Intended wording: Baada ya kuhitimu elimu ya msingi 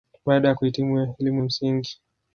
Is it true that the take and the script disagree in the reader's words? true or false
true